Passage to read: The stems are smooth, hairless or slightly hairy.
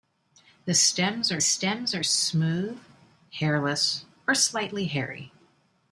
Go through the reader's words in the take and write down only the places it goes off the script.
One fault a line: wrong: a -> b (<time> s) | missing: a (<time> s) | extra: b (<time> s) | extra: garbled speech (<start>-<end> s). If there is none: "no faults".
extra: stems are (1.4 s)